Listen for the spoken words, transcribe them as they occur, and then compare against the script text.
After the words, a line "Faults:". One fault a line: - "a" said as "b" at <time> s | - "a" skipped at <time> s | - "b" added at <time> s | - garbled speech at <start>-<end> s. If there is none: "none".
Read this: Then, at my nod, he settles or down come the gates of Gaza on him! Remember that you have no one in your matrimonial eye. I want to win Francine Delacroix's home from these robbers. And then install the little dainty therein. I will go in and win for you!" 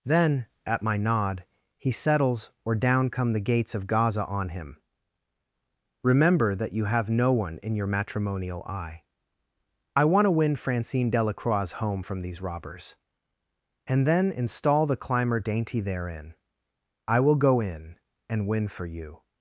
Then, at my nod, he settles or down come the gates of Gaza on him! Remember that you have no one in your matrimonial eye. I want to win Francine Delacroix's home from these robbers. And then install the climber dainty therein. I will go in and win for you!"
Faults:
- "little" said as "climber" at 15.0 s